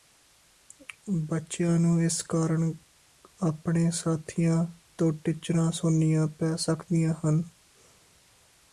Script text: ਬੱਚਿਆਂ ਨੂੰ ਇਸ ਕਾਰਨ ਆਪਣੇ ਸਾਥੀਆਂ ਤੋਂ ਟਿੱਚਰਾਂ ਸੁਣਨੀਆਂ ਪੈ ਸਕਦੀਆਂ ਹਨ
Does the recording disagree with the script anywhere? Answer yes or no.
no